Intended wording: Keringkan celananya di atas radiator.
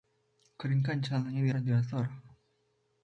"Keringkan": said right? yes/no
yes